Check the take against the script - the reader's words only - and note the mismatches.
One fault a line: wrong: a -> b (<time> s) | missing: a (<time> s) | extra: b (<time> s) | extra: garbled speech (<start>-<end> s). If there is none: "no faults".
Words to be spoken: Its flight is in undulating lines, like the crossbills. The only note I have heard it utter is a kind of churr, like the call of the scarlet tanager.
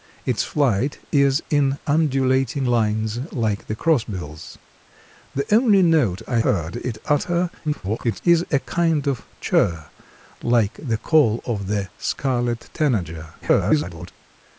missing: have (6.4 s)
extra: garbled speech (7.6-8.2 s)
extra: garbled speech (13.4-14.1 s)